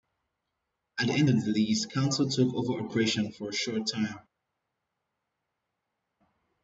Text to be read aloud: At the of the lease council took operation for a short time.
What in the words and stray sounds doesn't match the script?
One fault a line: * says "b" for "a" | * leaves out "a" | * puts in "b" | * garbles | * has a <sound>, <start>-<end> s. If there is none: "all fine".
* puts in "end"
* puts in "over"